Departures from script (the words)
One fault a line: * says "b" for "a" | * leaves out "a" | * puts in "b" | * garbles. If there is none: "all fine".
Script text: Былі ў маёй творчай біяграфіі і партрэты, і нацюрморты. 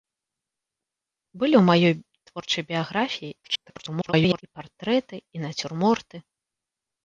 * garbles